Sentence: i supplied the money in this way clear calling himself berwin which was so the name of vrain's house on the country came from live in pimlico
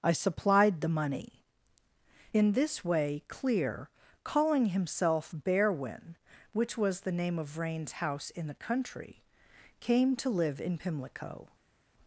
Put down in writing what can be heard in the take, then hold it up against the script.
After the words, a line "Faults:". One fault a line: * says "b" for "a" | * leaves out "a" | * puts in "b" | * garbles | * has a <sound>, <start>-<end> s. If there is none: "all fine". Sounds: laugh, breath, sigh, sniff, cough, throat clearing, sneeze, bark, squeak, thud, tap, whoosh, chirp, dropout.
i supplied the money in this way clear calling himself berwin which was the name of vrain's house in the country came to live in pimlico
Faults:
* leaves out "so"
* says "in" for "on"
* says "to" for "from"